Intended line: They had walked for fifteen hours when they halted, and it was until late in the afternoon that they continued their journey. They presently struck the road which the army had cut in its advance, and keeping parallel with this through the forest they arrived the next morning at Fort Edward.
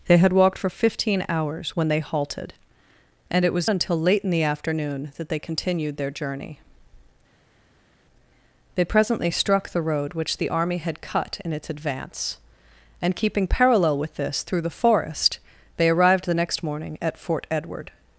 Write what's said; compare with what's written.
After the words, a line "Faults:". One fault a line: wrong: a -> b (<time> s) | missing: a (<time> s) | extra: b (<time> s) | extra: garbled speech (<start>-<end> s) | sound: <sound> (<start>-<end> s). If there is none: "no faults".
They had walked for fifteen hours when they halted, and it was until late in the afternoon that they continued their journey. They presently struck the road which the army had cut in its advance, and keeping parallel with this through the forest they arrived the next morning at Fort Edward.
Faults:
no faults